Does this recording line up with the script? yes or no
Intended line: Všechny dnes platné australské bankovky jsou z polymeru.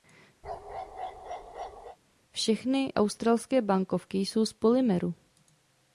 no